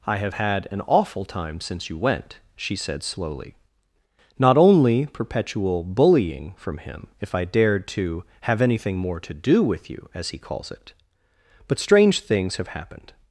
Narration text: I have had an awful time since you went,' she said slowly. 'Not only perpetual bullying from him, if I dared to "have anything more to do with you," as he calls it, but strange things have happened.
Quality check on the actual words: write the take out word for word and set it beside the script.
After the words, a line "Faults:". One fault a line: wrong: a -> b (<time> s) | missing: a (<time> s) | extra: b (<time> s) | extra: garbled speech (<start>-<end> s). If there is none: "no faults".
I have had an awful time since you went,' she said slowly. 'Not only perpetual bullying from him, if I dared to "have anything more to do with you," as he calls it, but strange things have happened.
Faults:
no faults